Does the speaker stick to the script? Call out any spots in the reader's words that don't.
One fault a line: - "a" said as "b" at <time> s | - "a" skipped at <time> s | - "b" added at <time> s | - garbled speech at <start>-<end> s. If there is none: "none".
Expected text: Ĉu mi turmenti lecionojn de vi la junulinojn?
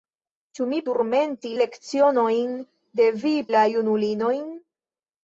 none